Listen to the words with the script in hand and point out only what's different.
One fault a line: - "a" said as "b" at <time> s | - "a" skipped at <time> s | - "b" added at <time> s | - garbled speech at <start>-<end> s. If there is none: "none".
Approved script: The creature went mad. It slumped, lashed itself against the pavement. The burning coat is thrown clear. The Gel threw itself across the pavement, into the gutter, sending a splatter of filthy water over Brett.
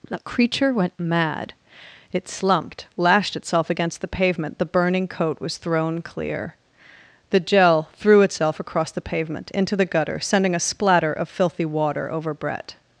- "is" said as "was" at 5.4 s